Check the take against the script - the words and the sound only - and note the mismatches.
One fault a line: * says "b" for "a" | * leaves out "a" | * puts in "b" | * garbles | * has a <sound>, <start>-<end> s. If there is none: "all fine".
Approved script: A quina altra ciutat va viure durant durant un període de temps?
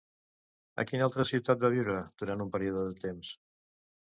* leaves out "durant"